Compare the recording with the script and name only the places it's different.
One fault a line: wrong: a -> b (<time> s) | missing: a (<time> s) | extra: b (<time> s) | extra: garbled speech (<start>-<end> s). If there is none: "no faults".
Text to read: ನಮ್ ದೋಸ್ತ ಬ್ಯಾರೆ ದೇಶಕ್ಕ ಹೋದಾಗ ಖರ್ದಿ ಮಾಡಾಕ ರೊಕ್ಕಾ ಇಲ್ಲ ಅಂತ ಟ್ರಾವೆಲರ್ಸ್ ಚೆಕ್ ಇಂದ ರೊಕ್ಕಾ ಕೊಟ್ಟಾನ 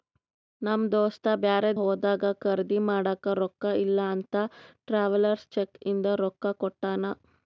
missing: ದೇಶಕ್ಕ (1.7 s)